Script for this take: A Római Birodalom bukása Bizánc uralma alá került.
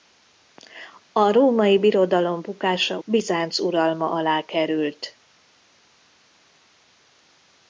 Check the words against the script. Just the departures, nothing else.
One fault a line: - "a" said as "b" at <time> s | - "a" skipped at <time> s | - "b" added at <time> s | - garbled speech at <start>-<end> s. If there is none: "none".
none